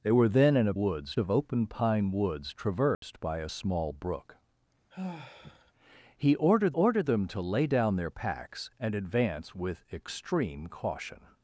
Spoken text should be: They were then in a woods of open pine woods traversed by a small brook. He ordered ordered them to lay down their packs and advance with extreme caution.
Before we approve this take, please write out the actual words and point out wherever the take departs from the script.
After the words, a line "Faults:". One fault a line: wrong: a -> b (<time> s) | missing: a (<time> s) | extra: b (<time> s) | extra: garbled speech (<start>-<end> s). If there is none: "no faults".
They were then in a woods of open pine woods traversed by a small brook. He ordered ordered them to lay down their packs and advance with extreme caution.
Faults:
no faults